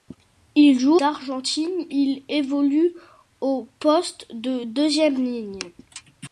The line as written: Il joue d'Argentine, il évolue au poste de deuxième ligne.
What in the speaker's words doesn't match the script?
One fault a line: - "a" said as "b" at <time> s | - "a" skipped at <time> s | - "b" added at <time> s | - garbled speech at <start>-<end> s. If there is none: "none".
none